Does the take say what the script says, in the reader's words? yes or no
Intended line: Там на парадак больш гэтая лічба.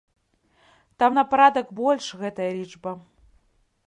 yes